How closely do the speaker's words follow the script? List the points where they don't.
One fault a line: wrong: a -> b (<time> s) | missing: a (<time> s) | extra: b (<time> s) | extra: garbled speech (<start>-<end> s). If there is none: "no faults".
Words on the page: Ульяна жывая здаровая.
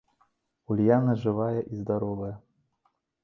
extra: і (1.7 s)